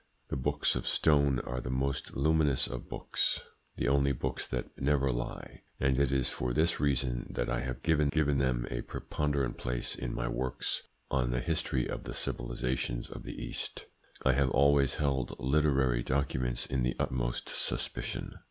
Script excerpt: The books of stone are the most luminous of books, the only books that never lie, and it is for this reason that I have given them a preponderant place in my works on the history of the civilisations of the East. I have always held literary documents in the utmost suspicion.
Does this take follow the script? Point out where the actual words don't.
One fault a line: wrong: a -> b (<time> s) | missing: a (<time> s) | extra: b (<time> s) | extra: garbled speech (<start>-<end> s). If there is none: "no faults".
extra: given (8.1 s)